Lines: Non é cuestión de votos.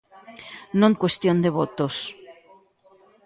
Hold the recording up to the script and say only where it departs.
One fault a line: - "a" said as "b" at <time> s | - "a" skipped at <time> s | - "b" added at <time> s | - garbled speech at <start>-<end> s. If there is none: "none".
none